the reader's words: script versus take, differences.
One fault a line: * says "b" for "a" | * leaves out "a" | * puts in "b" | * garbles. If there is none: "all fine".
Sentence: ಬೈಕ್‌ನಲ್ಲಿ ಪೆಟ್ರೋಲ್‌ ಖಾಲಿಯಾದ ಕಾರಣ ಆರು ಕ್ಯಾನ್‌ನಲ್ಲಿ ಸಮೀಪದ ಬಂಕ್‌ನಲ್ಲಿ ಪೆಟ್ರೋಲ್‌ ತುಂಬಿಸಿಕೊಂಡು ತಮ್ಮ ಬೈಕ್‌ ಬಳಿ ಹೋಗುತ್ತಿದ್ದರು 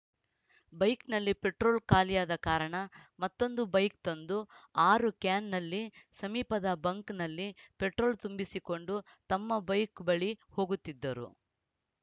* puts in "ಮತ್ತೊಂದು ಬೈಕ್ ತಂದು"